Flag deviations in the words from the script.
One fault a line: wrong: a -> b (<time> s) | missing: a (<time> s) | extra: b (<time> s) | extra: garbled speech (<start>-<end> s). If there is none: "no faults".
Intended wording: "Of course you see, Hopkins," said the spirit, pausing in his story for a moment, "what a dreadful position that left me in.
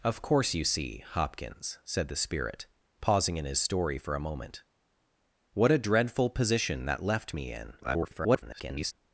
extra: garbled speech (7.8-8.9 s)